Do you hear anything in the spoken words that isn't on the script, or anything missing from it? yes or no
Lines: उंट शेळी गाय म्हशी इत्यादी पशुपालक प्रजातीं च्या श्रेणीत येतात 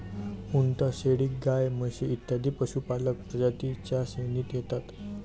no